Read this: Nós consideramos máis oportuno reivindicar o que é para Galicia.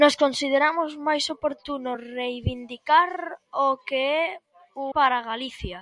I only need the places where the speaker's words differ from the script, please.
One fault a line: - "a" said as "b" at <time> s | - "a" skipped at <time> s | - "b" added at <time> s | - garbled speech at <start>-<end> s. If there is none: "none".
none